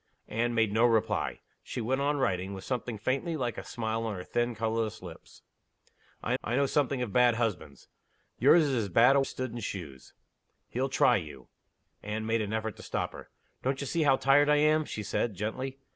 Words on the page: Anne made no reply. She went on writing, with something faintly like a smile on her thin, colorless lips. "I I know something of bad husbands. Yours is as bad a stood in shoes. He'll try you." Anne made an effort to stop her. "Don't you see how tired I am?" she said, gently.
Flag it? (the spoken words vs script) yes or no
no